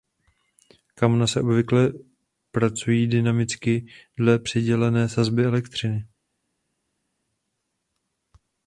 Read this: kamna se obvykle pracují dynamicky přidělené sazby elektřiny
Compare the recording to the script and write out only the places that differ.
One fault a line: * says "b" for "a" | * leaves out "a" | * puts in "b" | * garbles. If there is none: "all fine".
* puts in "dle"